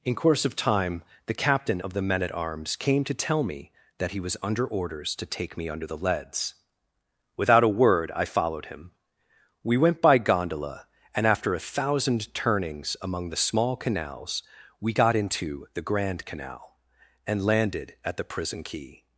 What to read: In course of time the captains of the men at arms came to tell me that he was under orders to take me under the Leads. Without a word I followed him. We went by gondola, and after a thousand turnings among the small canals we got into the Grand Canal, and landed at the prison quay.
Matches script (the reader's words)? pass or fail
fail